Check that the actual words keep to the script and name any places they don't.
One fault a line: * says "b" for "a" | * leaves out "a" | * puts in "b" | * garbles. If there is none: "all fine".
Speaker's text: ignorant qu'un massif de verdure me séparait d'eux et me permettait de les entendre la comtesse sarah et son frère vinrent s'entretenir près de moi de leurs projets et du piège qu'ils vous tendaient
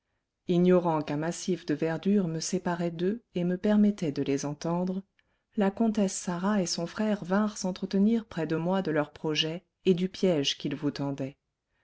all fine